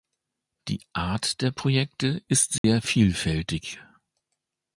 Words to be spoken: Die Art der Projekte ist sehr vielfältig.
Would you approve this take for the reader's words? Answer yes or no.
yes